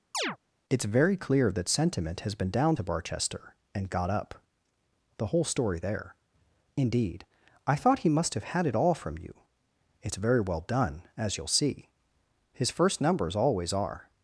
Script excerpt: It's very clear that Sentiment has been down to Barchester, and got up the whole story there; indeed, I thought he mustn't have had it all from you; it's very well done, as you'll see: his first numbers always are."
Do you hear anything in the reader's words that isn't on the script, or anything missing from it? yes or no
yes